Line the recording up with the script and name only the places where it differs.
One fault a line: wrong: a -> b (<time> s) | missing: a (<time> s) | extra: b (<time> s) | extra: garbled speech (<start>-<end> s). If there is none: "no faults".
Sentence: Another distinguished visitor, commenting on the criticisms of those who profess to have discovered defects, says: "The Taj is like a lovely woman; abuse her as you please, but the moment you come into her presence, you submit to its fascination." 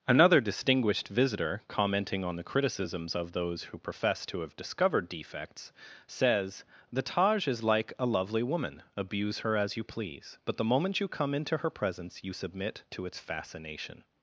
no faults